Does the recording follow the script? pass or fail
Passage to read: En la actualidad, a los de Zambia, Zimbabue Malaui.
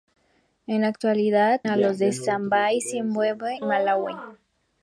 pass